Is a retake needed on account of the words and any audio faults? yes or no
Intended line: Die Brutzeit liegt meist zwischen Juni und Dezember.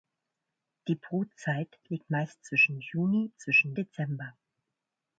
yes